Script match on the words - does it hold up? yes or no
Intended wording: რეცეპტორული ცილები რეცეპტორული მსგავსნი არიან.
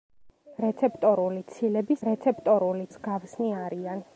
yes